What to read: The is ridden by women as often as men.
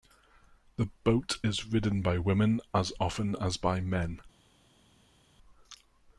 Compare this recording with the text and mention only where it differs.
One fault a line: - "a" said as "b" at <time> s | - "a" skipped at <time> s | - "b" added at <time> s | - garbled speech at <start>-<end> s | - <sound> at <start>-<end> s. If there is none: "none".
- "boat" added at 1.0 s
- "by" added at 3.6 s